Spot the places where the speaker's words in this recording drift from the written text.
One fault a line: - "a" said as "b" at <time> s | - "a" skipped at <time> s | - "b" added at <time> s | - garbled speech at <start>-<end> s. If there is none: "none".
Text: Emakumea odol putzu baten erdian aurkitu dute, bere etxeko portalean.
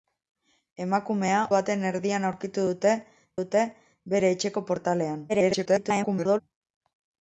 - "odol putzu" skipped at 1.4 s
- "dute" added at 3.4 s
- garbled speech at 5.3-6.4 s